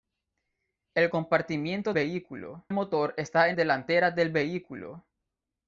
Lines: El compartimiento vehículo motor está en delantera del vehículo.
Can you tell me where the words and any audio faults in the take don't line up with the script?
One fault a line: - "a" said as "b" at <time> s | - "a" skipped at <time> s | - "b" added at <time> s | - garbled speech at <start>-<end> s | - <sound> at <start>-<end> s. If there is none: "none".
none